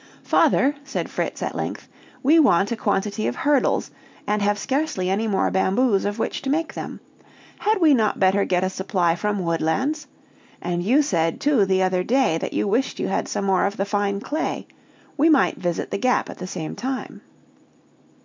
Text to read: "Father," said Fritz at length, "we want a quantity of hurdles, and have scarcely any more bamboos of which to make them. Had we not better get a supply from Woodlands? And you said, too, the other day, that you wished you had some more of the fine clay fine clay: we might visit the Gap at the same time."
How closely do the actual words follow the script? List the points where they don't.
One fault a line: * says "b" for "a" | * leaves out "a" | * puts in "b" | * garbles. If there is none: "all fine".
* leaves out "fine clay"